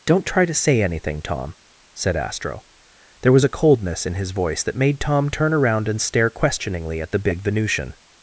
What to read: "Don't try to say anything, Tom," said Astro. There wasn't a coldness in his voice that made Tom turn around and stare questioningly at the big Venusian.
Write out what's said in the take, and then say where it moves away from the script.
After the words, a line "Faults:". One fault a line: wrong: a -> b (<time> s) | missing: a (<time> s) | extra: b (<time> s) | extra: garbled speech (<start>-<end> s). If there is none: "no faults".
"Don't try to say anything, Tom," said Astro. There was a coldness in his voice that made Tom turn around and stare questioningly at the big Venusian.
Faults:
wrong: wasn't -> was (3.3 s)